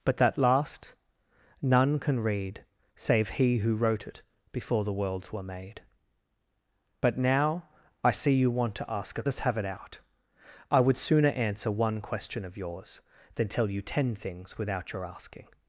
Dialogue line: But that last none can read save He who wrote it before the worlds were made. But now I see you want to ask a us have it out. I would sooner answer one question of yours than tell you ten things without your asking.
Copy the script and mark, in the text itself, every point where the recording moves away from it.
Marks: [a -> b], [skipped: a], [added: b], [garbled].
But that last none can read save He who wrote it before the worlds were made. But now I see you want to ask a us have it out. I would sooner answer one question of yours than tell you ten things without your asking.